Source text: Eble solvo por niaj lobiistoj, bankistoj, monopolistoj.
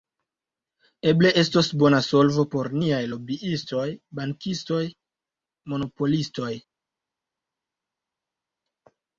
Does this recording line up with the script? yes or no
no